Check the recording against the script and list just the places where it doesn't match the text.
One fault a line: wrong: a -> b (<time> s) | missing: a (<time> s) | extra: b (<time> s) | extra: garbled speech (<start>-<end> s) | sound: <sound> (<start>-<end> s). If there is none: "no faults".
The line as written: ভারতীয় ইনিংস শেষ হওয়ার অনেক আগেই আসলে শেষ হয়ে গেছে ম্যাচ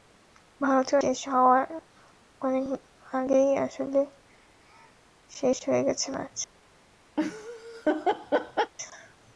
missing: ইনিংস (1.0 s)
sound: laugh (7.2-8.7 s)